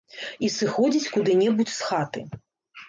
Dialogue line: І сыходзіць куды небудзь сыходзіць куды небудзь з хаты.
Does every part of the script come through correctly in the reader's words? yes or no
no